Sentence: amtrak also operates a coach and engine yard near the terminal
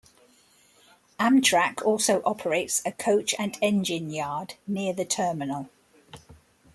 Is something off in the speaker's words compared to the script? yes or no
no